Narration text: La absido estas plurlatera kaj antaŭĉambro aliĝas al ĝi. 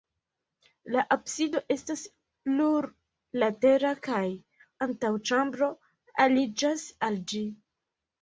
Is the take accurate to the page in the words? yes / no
yes